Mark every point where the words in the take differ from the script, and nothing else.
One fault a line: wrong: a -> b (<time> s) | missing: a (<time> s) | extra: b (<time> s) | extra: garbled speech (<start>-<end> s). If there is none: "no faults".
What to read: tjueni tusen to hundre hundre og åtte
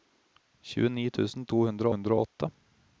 no faults